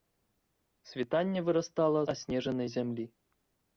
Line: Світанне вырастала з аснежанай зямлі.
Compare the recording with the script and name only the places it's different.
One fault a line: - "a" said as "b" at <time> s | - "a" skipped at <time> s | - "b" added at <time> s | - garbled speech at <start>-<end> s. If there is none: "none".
- "з" skipped at 2.0 s